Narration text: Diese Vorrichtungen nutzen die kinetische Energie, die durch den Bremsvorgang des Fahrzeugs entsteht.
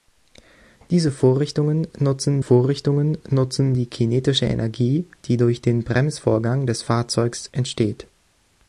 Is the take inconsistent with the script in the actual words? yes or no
yes